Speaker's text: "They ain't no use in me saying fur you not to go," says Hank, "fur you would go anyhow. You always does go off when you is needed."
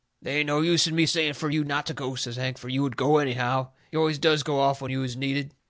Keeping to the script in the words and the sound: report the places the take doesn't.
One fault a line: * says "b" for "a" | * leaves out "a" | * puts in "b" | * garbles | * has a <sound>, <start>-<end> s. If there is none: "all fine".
all fine